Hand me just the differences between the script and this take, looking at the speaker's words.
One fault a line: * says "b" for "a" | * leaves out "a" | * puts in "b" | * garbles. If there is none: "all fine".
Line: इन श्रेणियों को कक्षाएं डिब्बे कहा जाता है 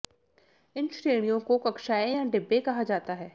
* puts in "या"